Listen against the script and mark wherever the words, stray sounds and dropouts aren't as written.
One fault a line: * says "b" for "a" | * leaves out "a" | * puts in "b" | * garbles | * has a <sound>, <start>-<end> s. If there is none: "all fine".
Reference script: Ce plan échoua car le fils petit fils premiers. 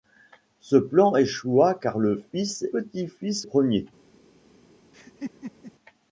* has a laugh, 4.9-5.7 s